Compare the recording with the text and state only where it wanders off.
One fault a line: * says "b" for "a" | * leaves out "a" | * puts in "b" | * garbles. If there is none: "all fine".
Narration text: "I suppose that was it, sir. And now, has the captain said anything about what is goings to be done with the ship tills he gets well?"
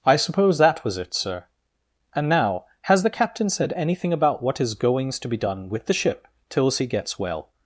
all fine